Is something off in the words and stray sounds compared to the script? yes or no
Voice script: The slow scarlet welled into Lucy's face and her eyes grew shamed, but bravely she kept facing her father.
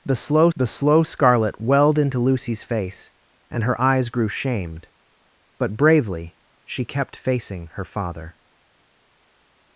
yes